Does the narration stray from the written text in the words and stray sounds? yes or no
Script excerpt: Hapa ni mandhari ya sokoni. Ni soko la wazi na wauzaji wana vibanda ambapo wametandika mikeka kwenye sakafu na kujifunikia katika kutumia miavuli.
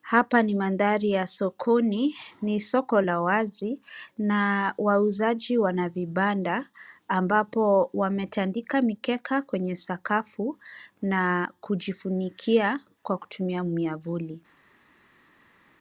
yes